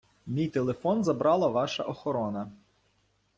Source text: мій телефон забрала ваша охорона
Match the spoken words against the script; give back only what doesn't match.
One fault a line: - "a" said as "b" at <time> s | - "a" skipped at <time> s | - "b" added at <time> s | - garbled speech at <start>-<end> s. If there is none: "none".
none